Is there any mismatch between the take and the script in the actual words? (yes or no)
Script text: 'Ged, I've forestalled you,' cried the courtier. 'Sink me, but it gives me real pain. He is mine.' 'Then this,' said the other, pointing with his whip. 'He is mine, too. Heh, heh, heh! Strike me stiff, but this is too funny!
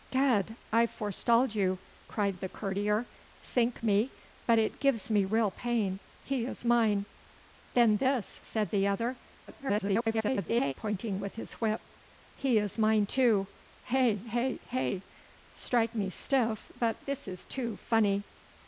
yes